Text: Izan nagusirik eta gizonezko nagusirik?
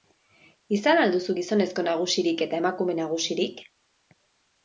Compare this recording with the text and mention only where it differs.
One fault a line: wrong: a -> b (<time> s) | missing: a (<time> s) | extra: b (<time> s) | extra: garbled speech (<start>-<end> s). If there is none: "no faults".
extra: al duzu gizonezko (1.0 s)
wrong: gizonezko -> emakume (2.6 s)